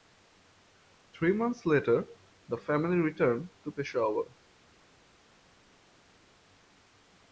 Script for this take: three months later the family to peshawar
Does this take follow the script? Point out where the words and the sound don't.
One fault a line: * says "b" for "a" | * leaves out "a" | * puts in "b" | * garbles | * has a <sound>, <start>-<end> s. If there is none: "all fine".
* puts in "returned"